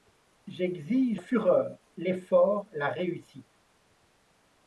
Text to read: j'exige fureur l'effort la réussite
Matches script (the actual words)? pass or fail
pass